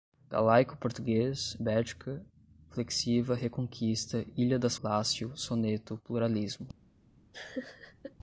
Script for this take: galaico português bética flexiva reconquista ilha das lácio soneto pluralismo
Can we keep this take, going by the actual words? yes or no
yes